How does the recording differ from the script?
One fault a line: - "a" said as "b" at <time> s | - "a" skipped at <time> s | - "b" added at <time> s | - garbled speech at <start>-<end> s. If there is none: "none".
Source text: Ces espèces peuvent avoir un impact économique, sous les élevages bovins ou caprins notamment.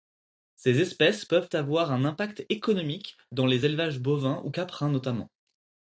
- "sous" said as "dans" at 3.3 s